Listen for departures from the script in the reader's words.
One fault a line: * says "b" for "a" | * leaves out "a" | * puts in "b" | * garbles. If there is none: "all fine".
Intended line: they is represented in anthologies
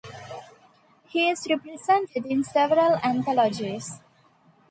* says "he" for "they"
* puts in "several"